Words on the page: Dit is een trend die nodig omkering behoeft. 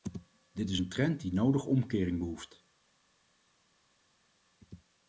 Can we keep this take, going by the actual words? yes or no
yes